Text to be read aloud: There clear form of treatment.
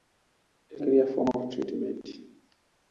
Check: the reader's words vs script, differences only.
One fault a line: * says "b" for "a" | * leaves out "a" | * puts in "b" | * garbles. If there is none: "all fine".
all fine